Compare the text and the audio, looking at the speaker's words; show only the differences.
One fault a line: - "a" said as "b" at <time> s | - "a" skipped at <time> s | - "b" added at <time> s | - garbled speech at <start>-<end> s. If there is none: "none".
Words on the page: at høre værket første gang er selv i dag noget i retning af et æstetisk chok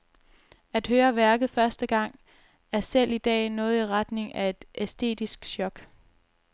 none